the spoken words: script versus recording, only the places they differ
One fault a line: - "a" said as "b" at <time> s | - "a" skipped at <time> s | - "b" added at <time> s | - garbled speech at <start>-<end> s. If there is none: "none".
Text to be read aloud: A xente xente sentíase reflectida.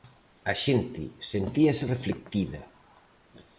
- "xente" skipped at 1.0 s